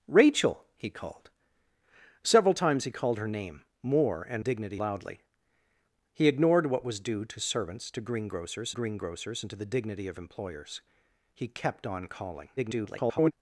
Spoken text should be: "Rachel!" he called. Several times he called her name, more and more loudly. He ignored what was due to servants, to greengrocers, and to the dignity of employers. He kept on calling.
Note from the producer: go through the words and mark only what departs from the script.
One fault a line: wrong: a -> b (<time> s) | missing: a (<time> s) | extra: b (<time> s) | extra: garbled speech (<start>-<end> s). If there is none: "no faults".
wrong: more -> dignity (4.4 s)
extra: greengrocers (8.7 s)
extra: garbled speech (12.6-13.3 s)